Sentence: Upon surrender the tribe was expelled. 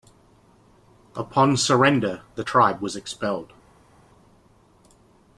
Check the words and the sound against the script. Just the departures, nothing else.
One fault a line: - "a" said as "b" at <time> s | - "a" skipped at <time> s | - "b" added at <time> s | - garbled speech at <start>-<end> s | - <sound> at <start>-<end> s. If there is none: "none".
none